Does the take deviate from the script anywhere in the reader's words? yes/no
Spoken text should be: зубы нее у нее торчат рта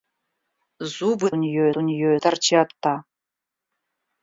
no